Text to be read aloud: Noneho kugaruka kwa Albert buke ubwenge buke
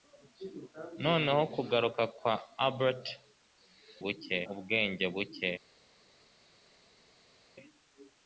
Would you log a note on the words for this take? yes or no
no